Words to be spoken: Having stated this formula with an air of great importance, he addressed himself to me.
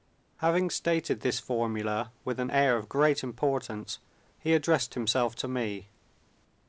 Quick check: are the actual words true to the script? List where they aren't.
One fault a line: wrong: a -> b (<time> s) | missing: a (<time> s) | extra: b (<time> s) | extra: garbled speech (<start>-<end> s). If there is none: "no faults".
no faults